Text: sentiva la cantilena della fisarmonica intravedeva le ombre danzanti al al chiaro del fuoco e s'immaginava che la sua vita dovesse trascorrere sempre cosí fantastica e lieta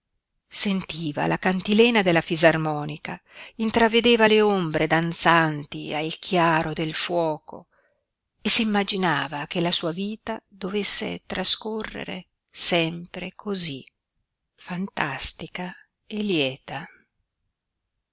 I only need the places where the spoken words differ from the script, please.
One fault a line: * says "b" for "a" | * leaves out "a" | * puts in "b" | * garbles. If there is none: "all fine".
* leaves out "al"